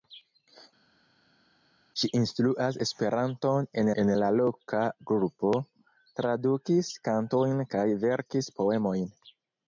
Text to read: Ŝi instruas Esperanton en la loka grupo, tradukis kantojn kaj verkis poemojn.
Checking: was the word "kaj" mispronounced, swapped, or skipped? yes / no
no